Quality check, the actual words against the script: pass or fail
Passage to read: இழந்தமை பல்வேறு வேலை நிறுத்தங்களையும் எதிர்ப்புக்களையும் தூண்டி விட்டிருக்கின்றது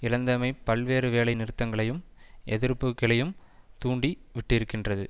pass